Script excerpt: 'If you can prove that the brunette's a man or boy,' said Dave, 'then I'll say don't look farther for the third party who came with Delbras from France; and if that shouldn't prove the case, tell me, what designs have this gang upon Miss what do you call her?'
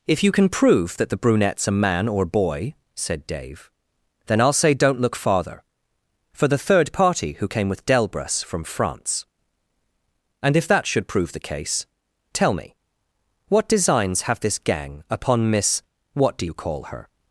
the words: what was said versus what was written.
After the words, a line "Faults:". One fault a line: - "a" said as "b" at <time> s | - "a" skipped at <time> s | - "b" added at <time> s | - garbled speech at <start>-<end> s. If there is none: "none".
'If you can prove that the brunette's a man or boy,' said Dave, 'then I'll say don't look farther for the third party who came with Delbras from France; and if that should prove the case, tell me, what designs have this gang upon Miss what do you call her?'
Faults:
- "shouldn't" said as "should" at 10.9 s